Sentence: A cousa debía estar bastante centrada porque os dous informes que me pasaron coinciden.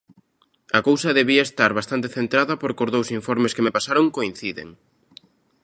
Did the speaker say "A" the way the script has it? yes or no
yes